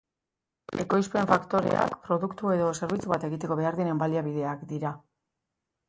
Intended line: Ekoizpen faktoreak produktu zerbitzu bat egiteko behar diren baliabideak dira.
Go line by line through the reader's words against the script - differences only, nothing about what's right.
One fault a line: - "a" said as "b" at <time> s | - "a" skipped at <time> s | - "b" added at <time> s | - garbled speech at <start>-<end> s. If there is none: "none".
- "edo" added at 2.6 s